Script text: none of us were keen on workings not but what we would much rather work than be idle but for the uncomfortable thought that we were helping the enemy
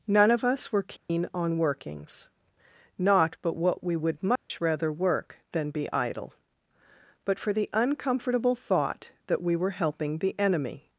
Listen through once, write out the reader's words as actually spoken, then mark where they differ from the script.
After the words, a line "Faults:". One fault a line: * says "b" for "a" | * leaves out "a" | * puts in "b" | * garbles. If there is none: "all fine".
none of us were keen on workings not but what we would much rather work than be idle but for the uncomfortable thought that we were helping the enemy
Faults:
all fine